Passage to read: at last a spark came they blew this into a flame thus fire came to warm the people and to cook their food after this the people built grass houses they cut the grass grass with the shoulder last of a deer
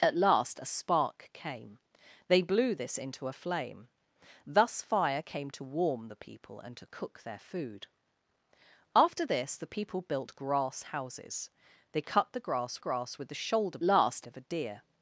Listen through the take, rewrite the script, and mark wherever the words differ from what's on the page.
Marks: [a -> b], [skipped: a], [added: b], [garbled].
at last a spark came they blew this into a flame thus fire came to warm the people and to cook their food after this the people built grass houses they cut the grass grass with the shoulder last of a deer